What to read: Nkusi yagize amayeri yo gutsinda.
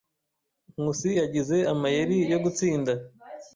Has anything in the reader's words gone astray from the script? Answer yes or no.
no